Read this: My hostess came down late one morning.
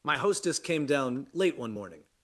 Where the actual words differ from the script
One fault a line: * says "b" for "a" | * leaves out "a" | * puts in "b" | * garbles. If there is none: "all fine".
all fine